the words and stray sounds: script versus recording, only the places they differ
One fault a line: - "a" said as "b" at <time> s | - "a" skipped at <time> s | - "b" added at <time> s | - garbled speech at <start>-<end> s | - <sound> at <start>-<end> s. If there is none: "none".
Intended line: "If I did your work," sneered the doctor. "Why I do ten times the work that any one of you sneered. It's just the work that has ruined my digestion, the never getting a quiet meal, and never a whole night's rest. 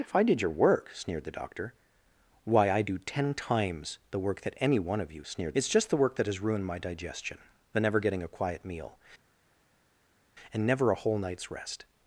none